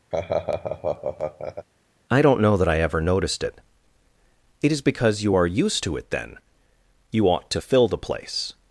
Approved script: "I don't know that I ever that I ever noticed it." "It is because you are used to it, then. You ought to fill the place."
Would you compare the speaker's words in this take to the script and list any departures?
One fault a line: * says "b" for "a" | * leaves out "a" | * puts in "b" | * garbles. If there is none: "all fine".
* leaves out "that I ever"